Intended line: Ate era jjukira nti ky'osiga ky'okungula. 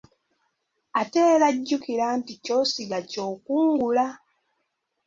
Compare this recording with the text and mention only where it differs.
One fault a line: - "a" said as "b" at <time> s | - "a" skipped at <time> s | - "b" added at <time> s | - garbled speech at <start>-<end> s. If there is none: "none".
none